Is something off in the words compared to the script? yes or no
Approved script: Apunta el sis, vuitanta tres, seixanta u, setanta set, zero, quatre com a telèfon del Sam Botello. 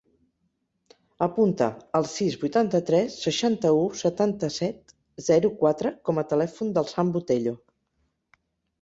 no